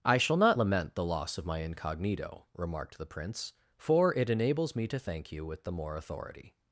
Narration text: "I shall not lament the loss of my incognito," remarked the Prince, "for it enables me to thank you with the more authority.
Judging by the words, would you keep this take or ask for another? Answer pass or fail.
pass